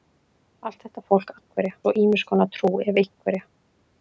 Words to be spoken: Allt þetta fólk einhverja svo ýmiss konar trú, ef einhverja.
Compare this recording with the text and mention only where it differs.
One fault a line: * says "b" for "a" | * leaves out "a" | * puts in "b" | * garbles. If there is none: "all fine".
all fine